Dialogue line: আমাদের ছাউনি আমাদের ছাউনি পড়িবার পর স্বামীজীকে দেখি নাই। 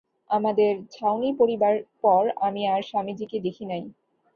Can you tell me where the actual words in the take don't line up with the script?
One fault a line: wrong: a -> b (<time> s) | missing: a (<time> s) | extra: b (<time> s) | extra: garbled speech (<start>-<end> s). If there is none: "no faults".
wrong: আমাদের ছাউনি পড়িবার পর -> পড়িবার পর আমি আর (1.4 s)